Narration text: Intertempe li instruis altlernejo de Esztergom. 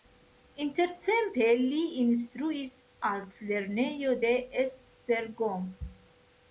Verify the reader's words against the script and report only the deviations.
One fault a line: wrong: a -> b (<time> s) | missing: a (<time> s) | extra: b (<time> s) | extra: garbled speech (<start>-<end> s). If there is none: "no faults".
no faults